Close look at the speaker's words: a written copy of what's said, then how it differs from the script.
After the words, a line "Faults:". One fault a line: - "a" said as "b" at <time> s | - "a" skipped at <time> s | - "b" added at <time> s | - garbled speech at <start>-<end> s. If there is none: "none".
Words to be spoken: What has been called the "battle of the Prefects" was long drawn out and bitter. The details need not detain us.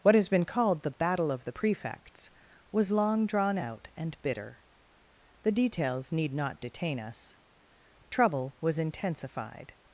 What has been called the "battle of the Prefects" was long drawn out and bitter. The details need not detain us. Trouble was intensified
Faults:
- "Trouble was intensified" added at 8.1 s